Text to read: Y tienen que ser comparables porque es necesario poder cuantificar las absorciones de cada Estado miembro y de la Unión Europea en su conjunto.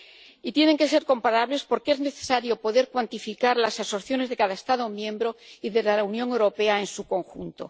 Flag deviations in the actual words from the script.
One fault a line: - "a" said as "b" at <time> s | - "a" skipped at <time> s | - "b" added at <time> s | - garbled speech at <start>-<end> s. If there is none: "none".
none